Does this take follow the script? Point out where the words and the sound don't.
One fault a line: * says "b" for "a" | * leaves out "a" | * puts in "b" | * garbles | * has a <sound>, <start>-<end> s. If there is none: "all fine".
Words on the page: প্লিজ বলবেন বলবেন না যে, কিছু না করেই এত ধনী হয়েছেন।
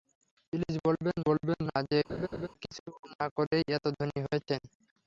* has a laugh, 2.1-2.5 s